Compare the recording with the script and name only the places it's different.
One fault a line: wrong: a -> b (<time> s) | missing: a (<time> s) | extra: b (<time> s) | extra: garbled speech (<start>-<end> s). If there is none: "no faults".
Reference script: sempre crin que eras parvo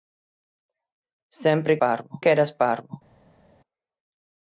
wrong: crin -> parvo (1.8 s)